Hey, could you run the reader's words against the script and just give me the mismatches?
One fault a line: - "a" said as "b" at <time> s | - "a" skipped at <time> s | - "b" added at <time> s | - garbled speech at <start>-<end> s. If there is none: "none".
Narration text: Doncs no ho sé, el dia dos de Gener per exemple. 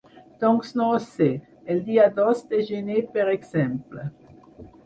none